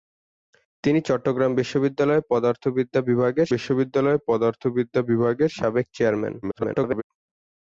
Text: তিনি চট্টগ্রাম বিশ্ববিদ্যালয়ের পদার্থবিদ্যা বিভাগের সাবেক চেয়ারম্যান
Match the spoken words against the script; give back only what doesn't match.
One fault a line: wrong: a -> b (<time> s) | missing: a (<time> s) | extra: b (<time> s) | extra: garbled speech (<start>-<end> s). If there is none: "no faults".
extra: বিশ্ববিদ্যালয়ের পদার্থবিদ্যা বিভাগের (3.5 s)
extra: garbled speech (6.4-7.0 s)